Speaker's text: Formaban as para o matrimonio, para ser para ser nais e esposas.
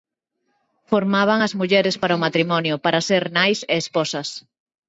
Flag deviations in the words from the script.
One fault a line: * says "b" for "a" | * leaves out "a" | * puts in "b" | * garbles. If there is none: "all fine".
* puts in "mulleres"
* leaves out "para ser"